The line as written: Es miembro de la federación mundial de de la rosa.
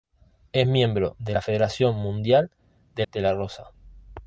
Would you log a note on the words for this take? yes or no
no